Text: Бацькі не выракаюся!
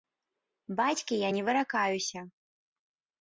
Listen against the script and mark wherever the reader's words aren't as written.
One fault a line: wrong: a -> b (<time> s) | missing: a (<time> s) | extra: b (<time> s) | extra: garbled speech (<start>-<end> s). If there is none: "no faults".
extra: я (1.2 s)